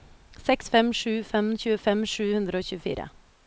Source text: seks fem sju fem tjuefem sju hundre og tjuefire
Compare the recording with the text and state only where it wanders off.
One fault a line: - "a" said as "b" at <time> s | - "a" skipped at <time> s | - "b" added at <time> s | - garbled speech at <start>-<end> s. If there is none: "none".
none